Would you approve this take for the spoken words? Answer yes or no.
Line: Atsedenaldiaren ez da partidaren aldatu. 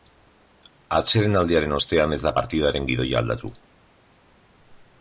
no